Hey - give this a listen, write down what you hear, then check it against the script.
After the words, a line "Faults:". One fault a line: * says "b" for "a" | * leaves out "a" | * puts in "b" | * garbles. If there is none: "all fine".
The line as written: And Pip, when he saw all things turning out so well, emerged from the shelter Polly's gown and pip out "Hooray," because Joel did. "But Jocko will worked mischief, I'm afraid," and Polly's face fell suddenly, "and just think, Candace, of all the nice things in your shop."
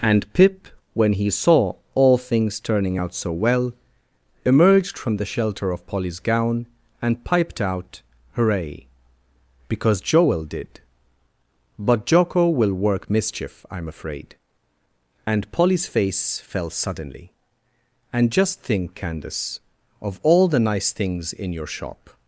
And Pip, when he saw all things turning out so well, emerged from the shelter of Polly's gown and piped out "Hooray," because Joel did. "But Jocko will work mischief, I'm afraid," and Polly's face fell suddenly, "and just think, Candace, of all the nice things in your shop."
Faults:
* puts in "of"
* says "piped" for "pip"
* says "work" for "worked"